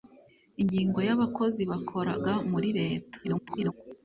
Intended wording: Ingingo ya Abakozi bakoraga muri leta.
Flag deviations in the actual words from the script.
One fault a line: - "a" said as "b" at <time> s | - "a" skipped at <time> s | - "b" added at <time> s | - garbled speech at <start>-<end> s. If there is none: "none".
- garbled speech at 3.2-3.7 s